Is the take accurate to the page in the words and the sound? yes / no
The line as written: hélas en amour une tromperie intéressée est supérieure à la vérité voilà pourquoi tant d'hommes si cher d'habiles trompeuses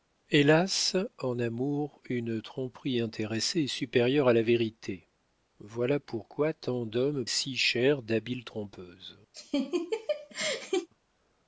no